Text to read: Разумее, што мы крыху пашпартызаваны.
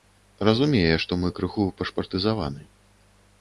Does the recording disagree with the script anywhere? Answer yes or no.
no